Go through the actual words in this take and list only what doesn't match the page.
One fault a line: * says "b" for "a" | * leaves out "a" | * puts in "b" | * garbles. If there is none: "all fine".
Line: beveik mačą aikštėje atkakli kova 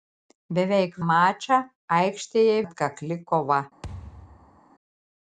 all fine